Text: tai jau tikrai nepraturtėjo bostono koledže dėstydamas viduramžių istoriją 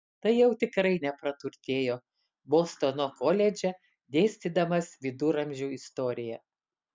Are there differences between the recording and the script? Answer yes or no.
no